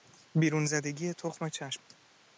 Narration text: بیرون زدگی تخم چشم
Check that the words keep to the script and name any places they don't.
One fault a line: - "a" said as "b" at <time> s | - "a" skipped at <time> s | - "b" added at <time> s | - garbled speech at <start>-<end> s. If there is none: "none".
none